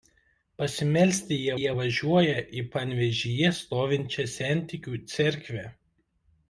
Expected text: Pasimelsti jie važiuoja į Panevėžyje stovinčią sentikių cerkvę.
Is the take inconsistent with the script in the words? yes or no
yes